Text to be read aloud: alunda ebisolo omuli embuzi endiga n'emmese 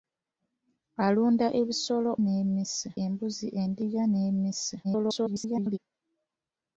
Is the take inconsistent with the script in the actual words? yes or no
yes